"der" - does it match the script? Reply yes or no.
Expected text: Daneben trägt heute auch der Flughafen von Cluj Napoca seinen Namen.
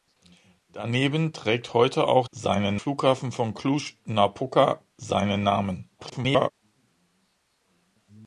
no